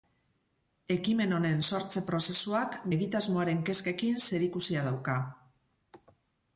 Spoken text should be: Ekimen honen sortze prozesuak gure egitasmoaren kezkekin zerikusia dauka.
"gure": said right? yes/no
no